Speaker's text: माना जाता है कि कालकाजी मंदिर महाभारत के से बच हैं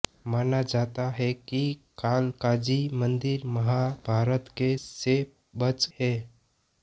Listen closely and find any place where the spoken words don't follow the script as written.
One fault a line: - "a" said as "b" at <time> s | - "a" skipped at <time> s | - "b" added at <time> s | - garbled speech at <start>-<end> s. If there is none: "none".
none